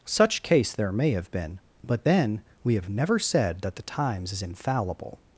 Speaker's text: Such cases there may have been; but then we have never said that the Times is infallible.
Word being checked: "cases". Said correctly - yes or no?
no